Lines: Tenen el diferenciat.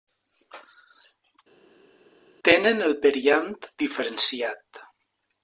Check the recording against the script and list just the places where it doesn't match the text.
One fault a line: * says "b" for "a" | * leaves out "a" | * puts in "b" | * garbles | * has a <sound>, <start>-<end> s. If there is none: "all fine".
* puts in "periant"